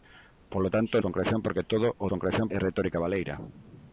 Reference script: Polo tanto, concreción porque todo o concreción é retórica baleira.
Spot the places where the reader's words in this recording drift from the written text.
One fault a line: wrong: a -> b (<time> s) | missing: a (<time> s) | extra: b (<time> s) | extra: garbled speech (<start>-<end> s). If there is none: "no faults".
no faults